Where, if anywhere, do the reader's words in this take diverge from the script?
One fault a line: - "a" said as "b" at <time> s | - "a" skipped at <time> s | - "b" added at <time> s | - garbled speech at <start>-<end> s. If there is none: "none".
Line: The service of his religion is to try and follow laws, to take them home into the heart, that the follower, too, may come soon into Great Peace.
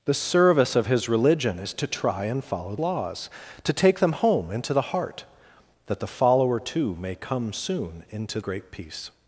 none